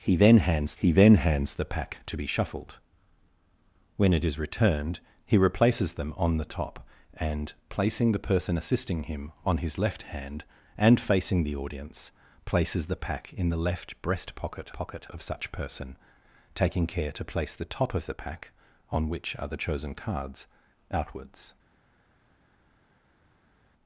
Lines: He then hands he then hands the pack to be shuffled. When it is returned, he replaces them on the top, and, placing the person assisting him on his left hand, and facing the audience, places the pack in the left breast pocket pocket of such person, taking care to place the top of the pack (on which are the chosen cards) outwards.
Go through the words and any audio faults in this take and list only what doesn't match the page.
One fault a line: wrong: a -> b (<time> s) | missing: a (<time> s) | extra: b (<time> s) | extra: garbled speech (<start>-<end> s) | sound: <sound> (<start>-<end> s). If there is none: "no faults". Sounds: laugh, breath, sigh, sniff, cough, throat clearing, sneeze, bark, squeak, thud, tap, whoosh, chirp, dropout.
no faults